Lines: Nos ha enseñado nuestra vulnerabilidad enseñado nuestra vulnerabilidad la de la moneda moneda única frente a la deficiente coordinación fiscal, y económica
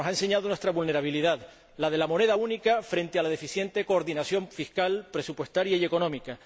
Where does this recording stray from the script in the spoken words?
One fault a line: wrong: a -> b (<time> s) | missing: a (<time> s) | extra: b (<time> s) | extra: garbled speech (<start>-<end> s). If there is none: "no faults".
missing: enseñado nuestra vulnerabilidad (1.4 s)
missing: moneda (2.4 s)
extra: presupuestaria (5.1 s)